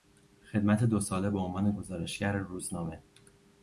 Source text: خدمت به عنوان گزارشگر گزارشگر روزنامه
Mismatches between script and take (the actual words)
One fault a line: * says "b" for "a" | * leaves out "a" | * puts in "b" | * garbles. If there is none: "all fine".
* puts in "دو ساله"
* leaves out "گزارشگر"